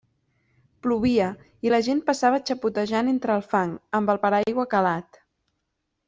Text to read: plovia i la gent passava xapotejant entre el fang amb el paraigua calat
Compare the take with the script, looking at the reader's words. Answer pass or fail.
pass